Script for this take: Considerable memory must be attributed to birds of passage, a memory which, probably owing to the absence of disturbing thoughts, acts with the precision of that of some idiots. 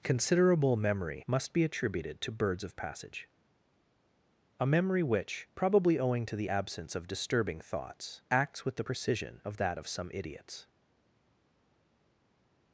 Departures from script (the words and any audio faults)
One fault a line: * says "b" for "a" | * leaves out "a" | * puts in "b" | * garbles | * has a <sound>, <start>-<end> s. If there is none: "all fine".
all fine